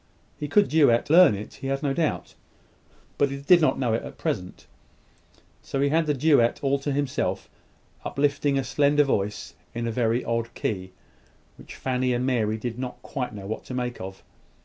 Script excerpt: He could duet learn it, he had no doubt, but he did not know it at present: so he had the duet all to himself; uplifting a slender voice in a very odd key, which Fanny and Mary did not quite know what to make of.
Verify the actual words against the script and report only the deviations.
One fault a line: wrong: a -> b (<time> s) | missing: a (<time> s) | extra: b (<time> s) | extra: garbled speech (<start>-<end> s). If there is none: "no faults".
no faults